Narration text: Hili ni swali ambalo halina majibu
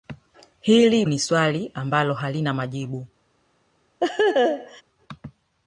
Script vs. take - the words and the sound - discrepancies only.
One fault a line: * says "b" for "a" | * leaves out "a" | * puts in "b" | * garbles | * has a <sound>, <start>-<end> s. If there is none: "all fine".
* has a laugh, 4.0-4.8 s